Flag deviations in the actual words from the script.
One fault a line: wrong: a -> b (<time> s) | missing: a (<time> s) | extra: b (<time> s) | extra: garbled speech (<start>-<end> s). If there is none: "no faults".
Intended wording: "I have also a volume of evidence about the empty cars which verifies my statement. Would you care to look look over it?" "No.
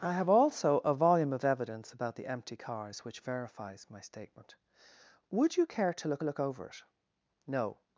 no faults